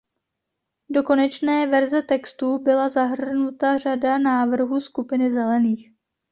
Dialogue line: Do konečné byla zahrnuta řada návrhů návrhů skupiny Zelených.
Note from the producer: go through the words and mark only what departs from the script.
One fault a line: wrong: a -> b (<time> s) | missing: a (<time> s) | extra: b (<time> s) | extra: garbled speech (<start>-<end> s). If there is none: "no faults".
extra: verze textu (1.7 s)
missing: návrhů (4.8 s)